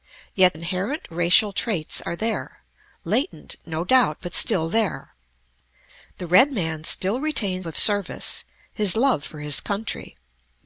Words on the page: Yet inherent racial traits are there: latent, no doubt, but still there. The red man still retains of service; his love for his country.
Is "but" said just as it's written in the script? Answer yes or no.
yes